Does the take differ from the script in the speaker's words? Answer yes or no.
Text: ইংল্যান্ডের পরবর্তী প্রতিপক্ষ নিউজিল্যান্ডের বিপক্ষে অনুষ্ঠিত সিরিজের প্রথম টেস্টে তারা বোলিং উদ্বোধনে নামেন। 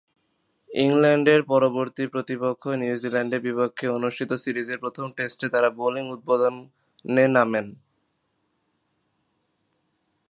no